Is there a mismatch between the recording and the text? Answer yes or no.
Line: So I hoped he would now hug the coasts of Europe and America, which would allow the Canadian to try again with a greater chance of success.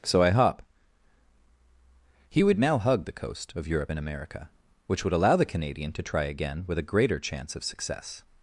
yes